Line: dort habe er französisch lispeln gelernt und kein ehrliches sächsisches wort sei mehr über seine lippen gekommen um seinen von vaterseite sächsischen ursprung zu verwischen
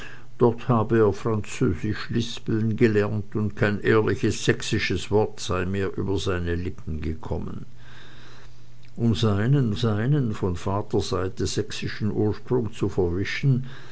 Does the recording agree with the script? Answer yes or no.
no